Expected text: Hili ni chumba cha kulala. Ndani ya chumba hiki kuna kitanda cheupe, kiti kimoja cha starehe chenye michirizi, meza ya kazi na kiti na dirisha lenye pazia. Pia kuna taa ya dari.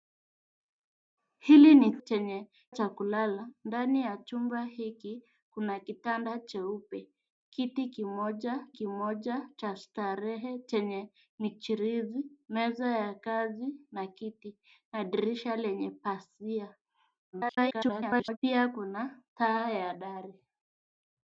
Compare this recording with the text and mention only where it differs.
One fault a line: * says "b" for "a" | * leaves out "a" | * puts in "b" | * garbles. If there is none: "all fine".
* says "chenye" for "chumba"
* puts in "kimoja"
* garbles